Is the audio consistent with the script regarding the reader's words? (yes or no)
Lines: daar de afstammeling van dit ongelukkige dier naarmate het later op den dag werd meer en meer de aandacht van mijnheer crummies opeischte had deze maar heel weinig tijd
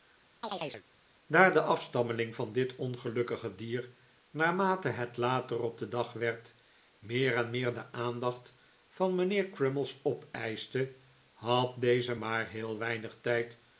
yes